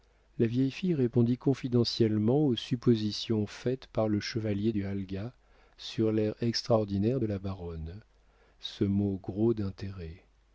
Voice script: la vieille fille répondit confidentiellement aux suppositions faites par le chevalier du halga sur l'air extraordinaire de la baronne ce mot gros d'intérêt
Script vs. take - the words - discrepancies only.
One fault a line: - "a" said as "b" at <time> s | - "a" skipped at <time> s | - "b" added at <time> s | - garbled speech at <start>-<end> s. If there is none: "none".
none